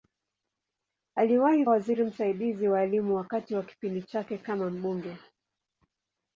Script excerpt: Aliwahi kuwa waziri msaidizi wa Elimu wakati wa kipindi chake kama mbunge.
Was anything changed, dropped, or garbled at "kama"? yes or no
no